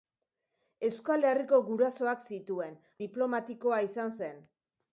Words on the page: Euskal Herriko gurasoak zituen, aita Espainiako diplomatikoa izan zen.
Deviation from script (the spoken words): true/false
true